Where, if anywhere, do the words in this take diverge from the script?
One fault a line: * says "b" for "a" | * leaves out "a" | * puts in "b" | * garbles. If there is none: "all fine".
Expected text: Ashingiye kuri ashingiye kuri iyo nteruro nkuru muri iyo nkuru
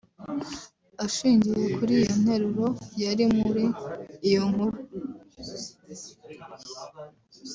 * leaves out "ashingiye kuri"
* says "yari" for "nkuru"